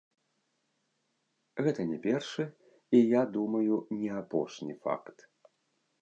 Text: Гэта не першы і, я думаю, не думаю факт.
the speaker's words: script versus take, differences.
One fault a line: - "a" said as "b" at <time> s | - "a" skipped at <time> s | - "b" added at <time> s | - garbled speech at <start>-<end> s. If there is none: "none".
- "думаю" said as "апошні" at 4.2 s